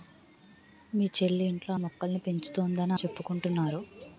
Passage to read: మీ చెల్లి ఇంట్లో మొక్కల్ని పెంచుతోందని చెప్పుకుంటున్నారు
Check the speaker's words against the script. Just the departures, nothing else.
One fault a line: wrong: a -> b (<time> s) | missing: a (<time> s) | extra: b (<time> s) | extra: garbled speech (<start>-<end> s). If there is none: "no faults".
no faults